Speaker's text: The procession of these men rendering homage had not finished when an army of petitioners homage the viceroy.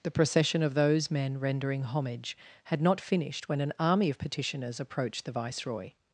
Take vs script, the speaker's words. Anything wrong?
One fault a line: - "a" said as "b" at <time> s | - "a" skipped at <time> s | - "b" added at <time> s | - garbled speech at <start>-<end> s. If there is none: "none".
- "these" said as "those" at 0.7 s
- "homage" said as "approached" at 4.8 s